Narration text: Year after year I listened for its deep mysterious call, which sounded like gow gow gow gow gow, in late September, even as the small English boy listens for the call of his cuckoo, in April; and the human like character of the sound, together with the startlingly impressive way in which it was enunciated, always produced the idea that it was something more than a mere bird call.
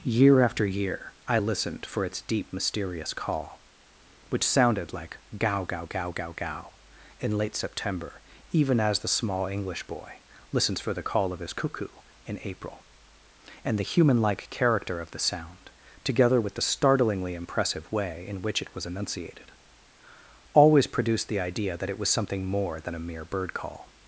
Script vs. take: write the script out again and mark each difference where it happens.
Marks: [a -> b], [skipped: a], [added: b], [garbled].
Year after year I listened for its deep mysterious call, which sounded like gow gow gow gow gow, in late September, even as the small English boy listens for the call of his cuckoo, in April; and the human like character of the sound, together with the startlingly impressive way in which it was enunciated, always produced the idea that it was something more than a mere bird call.